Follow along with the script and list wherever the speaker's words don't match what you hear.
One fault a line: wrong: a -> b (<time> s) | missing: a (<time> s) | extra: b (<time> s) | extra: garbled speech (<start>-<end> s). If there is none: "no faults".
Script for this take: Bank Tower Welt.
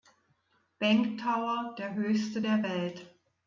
extra: der höchste der (1.8 s)